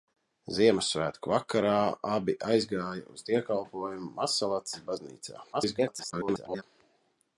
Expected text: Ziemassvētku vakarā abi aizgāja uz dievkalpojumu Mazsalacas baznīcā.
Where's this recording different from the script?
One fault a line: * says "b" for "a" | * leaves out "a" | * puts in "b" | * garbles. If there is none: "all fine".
* garbles